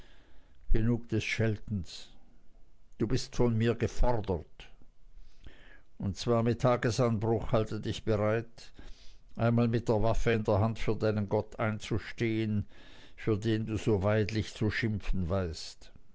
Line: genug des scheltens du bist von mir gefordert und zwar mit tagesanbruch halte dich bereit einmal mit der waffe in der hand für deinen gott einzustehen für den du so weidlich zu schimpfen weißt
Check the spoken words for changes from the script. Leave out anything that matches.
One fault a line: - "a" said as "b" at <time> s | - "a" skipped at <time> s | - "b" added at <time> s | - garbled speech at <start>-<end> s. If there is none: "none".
none